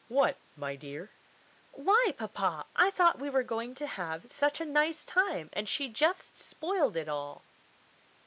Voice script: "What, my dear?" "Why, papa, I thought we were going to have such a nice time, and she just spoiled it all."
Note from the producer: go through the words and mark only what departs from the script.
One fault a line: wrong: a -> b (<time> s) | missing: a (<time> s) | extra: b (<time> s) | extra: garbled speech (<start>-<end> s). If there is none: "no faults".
no faults